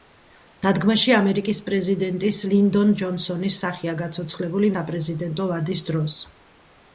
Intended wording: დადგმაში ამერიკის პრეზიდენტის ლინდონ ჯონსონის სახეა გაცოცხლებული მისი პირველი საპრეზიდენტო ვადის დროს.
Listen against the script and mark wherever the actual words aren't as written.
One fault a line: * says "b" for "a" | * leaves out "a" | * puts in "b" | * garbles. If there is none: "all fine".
* leaves out "მისი პირველი"